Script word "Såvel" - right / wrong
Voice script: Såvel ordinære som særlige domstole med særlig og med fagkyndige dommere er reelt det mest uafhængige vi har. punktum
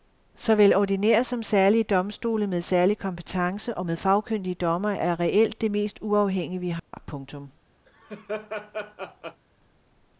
right